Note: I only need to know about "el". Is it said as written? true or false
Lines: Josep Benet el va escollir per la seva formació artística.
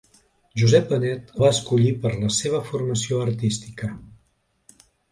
false